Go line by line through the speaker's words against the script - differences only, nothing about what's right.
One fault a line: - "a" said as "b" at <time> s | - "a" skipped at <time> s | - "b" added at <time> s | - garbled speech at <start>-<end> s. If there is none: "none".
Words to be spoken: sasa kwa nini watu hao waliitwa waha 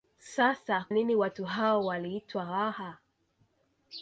- "kwa" skipped at 0.8 s